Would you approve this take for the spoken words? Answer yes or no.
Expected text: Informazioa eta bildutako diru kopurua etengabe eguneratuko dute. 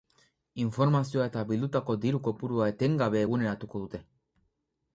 yes